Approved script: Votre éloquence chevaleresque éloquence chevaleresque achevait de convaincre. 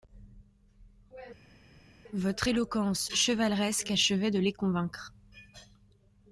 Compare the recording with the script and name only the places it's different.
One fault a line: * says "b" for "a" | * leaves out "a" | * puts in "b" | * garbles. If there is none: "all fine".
* leaves out "éloquence chevaleresque"
* puts in "les"